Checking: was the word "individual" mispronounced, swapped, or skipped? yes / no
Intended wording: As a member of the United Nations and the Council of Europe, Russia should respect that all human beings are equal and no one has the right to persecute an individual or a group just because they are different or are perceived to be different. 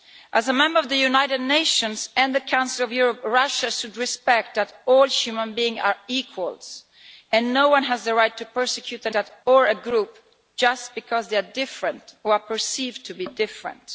yes